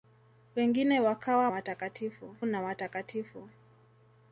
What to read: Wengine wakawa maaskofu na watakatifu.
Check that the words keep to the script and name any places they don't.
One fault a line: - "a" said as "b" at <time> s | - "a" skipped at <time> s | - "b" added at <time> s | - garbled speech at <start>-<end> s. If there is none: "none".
- "maaskofu" said as "watakatifu" at 1.5 s